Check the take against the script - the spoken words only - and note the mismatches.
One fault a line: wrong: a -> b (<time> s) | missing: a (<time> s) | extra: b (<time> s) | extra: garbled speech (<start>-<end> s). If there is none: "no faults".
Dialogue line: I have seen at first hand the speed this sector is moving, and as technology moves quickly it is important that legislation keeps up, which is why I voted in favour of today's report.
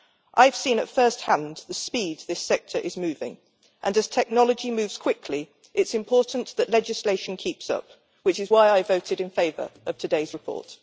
no faults